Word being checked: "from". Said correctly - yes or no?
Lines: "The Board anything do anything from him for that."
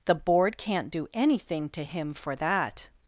no